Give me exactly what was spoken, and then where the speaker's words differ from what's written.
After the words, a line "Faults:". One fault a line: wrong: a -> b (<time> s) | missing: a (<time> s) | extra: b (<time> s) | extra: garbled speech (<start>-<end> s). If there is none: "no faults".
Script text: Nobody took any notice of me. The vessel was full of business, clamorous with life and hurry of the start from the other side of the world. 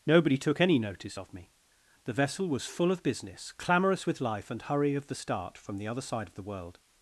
Nobody took any notice of me. The vessel was full of business, clamorous with life and hurry of the start from the other side of the world.
Faults:
no faults